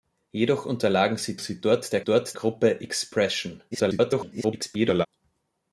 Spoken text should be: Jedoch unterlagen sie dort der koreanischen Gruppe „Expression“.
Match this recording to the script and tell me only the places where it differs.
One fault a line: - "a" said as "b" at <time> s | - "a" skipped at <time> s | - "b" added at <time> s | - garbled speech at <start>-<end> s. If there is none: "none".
- "sie" added at 1.4 s
- "koreanischen" said as "dort" at 2.0 s
- garbled speech at 3.7-5.1 s